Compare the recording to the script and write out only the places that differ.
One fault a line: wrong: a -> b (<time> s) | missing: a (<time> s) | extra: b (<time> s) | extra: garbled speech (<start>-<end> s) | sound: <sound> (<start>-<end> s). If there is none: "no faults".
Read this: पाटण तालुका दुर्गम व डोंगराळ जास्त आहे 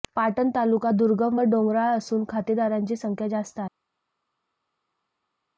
extra: असून खातेदारांची संख्या (2.0 s)